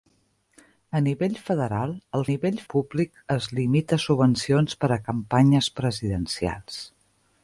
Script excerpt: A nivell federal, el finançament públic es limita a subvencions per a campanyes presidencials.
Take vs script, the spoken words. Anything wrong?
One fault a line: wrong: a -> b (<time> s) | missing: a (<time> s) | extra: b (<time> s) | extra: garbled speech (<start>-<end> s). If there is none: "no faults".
wrong: finançament -> nivell (2.3 s)